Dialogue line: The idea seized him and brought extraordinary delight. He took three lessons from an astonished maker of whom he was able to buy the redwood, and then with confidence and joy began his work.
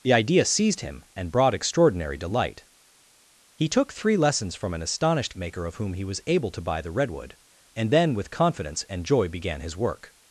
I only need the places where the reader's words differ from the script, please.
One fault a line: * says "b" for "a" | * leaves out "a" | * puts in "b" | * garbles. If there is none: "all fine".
all fine